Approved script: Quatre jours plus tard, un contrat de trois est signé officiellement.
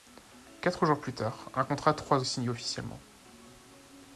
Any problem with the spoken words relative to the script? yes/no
no